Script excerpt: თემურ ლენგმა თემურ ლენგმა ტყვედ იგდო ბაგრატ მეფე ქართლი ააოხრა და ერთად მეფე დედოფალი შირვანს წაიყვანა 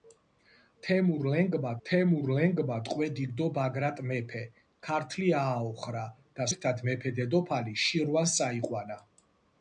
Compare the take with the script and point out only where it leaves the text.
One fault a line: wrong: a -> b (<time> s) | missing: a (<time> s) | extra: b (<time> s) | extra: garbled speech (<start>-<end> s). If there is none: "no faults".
no faults